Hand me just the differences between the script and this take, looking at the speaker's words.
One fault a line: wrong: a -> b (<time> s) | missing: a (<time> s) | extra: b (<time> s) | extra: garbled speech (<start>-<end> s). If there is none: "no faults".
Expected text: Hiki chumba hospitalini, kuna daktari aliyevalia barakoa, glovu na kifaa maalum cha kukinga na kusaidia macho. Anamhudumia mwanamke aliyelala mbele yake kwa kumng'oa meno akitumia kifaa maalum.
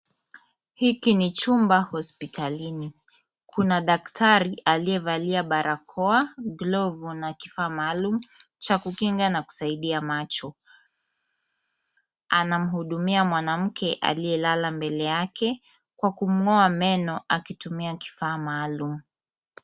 extra: ni (1.1 s)